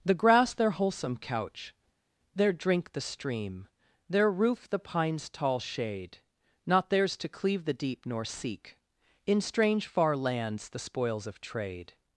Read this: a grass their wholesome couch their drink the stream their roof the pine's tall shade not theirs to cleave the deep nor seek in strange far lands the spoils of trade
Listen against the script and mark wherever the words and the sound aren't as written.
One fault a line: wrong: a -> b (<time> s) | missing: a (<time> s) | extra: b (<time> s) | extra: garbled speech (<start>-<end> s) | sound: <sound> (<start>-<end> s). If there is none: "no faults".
wrong: a -> the (0.0 s)